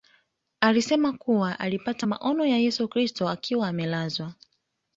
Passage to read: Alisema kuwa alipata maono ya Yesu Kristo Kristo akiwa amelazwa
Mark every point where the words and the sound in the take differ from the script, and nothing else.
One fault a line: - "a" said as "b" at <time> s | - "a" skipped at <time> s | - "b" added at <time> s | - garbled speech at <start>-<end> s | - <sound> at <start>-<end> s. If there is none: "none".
- "Kristo" skipped at 3.3 s